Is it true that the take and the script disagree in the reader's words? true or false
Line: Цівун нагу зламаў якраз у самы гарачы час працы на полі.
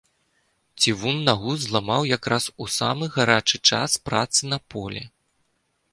false